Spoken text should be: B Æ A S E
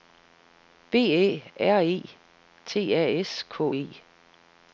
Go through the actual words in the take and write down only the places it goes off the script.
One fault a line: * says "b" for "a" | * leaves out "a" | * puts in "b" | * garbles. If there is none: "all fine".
* puts in "R E T"
* puts in "K"